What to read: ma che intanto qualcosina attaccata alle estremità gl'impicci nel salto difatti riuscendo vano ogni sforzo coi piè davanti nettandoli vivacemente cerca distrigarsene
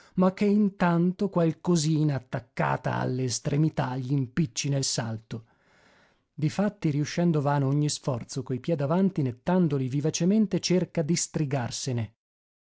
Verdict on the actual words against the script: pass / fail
pass